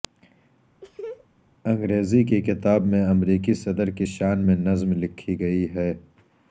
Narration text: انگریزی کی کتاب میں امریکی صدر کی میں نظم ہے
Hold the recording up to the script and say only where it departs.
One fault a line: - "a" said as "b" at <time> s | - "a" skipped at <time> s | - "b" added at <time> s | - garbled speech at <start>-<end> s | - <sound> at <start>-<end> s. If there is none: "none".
- laugh at 0.8-1.3 s
- "شان" added at 4.1 s
- "لکھی گئی" added at 4.9 s